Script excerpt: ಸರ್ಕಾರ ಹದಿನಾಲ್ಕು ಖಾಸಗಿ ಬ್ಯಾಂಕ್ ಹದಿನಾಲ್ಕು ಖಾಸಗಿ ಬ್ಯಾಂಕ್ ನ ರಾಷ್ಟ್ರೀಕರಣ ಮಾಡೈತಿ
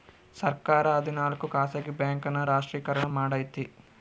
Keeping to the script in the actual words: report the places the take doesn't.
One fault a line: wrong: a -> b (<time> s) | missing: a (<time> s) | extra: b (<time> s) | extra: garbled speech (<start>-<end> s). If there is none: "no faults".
missing: ಹದಿನಾಲ್ಕು ಖಾಸಗಿ ಬ್ಯಾಂಕ್ (2.3 s)